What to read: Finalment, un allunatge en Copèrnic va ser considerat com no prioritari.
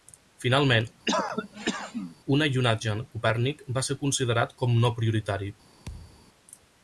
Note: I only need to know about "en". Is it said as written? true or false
true